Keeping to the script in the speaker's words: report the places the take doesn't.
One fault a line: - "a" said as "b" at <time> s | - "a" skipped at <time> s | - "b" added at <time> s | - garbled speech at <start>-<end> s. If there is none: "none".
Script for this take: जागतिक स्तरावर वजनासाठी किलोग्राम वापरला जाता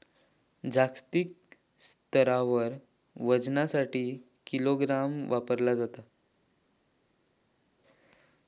none